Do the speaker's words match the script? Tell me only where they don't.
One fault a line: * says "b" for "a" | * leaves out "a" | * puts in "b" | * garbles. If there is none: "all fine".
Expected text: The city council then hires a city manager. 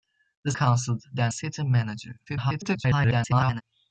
* leaves out "city"
* leaves out "hires a"
* garbles